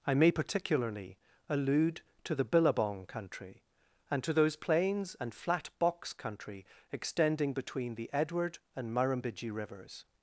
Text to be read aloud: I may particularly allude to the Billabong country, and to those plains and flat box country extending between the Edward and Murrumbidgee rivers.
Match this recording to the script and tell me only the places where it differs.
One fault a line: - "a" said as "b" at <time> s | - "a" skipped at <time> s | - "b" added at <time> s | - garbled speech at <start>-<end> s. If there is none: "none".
none